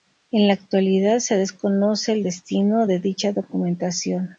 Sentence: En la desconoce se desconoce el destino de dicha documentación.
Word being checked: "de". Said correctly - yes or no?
yes